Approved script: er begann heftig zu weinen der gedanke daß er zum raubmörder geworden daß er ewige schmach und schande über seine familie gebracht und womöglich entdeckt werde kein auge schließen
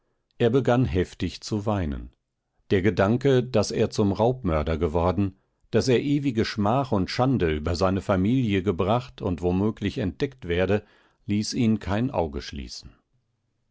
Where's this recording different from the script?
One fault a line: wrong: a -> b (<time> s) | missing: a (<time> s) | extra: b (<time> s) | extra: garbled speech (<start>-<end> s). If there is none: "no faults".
extra: ließ ihn (11.3 s)